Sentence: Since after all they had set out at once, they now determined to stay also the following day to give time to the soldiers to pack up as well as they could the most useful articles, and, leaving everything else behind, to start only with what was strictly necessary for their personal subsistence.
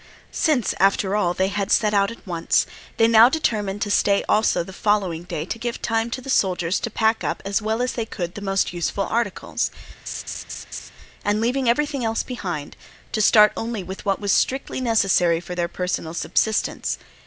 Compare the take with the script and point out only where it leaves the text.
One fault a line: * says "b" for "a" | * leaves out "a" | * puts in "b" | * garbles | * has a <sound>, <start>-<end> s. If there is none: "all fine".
* has a laugh, 10.1-10.9 s